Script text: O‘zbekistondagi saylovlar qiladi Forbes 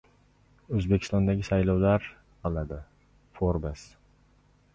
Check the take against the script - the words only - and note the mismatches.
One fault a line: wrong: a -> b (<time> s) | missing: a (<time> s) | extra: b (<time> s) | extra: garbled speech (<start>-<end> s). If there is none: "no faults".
no faults